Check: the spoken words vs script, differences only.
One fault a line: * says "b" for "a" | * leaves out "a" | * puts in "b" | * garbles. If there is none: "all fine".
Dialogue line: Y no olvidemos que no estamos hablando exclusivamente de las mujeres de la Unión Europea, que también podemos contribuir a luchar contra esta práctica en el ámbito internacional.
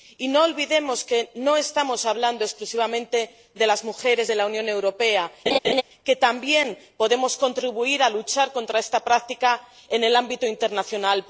all fine